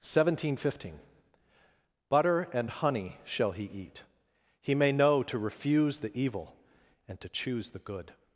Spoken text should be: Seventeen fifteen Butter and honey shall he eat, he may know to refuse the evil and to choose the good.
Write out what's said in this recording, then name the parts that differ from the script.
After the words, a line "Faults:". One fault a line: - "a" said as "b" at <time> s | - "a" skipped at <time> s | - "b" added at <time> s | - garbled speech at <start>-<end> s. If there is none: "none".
Seventeen fifteen Butter and honey shall he eat, he may know to refuse the evil and to choose the good.
Faults:
none